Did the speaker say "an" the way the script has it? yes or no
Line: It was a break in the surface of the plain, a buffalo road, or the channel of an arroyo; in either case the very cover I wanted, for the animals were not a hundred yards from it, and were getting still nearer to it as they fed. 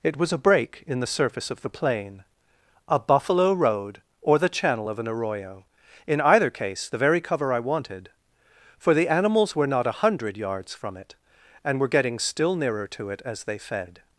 yes